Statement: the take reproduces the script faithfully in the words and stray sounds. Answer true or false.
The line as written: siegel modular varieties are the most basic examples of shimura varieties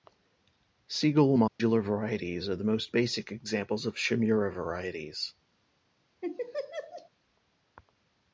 false